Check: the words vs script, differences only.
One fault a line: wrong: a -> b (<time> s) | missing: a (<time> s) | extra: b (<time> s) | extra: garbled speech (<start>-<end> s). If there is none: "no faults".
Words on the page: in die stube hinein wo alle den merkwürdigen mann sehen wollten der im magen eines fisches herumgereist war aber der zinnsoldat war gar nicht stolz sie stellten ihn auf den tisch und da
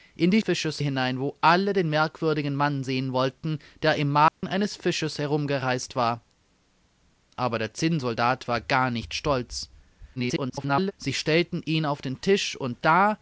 wrong: stube -> fisches (0.4 s)
extra: garbled speech (10.2-10.9 s)